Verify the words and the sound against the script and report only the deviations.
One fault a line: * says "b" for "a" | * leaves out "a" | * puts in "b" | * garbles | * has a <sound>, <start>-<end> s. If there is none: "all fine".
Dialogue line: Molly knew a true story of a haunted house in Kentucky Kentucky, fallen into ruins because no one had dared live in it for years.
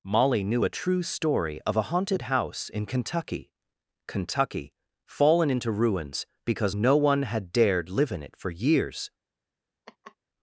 * has a laugh, 9.9-10.2 s